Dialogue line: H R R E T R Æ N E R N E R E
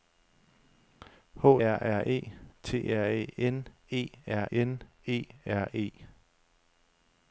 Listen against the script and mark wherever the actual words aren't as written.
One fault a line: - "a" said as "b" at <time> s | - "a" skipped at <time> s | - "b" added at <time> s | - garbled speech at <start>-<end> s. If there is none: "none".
none